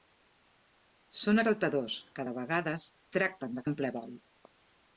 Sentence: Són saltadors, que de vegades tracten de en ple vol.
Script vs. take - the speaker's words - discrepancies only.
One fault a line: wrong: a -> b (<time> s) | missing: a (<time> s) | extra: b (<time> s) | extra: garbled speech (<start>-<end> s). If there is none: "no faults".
no faults